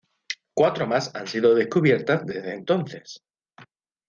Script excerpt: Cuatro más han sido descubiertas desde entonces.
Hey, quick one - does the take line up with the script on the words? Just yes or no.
yes